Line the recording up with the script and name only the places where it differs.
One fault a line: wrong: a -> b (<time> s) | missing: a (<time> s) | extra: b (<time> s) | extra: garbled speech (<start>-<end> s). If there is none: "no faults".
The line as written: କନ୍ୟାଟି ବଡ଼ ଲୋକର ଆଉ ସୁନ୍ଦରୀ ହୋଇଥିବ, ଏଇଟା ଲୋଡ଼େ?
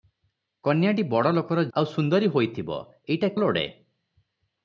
no faults